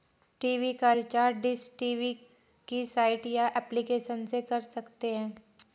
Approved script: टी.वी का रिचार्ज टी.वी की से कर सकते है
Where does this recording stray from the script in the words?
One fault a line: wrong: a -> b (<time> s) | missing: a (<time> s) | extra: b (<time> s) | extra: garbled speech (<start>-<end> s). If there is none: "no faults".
extra: डिश (1.4 s)
extra: साइट या एप्लीकेशन (2.9 s)